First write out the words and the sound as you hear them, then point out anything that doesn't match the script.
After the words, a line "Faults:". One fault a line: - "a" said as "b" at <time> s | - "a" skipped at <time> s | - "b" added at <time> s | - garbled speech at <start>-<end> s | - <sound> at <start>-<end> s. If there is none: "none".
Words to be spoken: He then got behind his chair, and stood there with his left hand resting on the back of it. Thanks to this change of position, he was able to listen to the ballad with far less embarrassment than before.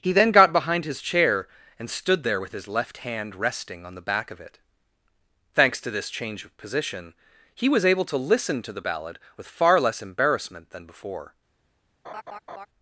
He then got behind his chair, and stood there with his left hand resting on the back of it. Thanks to this change of position, he was able to listen to the ballad with far less embarrassment than before.
Faults:
- laugh at 12.0-12.7 s